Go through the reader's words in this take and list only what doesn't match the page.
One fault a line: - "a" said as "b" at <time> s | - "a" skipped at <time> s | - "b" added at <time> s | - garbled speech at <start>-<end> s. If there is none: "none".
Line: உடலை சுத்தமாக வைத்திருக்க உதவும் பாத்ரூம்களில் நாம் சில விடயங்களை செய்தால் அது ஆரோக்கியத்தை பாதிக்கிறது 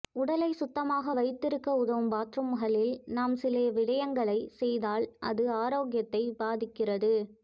none